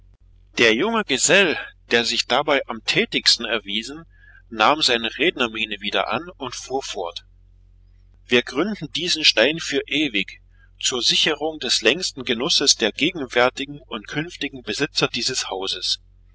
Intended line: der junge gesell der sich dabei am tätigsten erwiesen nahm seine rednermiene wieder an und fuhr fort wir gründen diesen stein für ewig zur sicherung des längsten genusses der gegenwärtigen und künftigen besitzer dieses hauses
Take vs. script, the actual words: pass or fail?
pass